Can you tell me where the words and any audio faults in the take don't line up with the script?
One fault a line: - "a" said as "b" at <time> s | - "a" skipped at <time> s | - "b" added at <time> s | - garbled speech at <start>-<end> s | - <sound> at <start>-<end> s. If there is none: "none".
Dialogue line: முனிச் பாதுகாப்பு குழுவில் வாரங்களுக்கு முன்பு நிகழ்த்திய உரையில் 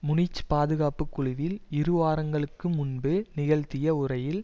- "இரு" added at 1.7 s